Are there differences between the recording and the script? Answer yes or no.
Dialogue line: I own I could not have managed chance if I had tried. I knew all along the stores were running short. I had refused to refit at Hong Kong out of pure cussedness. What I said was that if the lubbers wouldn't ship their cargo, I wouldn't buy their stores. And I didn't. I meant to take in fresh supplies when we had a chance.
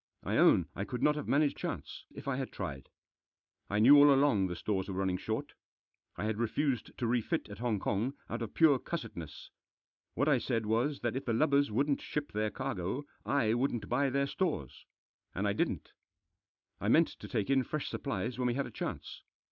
no